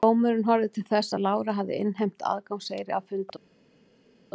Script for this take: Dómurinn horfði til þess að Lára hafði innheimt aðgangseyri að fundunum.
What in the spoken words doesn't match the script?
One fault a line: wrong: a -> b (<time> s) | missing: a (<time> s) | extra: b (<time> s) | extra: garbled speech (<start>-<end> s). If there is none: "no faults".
no faults